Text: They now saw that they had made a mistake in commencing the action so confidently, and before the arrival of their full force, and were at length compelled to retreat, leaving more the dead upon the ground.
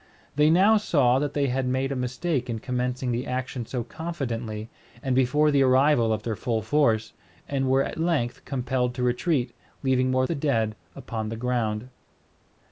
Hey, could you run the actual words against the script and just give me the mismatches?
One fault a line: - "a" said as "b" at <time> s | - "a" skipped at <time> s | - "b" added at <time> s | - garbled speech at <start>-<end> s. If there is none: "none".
none